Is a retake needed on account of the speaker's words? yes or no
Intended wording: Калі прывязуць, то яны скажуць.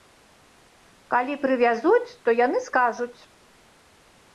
no